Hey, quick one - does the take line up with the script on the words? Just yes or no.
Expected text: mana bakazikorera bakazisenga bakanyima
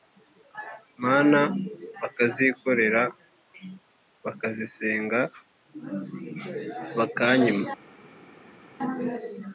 yes